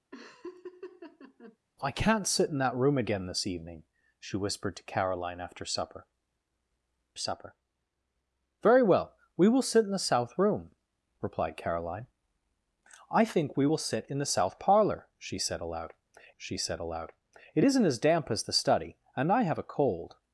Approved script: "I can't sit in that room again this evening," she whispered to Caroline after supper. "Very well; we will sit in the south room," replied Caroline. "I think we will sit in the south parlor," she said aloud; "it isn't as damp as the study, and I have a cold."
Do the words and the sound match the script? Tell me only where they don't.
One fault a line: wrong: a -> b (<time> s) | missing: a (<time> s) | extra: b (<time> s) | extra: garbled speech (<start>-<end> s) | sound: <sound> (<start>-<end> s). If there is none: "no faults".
sound: laugh (0.1-1.6 s)
extra: supper (7.2 s)
extra: she said aloud (16.3 s)